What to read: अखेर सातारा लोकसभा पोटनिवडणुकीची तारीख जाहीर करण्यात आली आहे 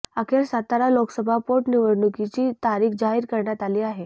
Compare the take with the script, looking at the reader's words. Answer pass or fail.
pass